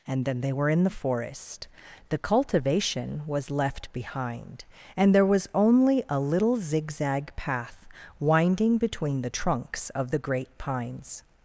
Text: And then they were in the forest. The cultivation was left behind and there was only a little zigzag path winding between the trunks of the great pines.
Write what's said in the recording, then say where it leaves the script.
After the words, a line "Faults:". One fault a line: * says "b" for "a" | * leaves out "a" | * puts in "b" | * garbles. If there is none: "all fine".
And then they were in the forest. The cultivation was left behind and there was only a little zigzag path winding between the trunks of the great pines.
Faults:
all fine